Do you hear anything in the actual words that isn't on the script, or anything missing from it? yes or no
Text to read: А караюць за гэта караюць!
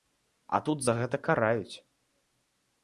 yes